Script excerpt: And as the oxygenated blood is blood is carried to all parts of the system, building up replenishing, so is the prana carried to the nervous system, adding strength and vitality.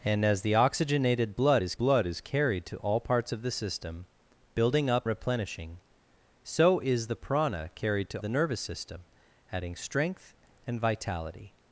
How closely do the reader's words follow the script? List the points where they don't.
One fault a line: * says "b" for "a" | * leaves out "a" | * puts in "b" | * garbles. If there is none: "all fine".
all fine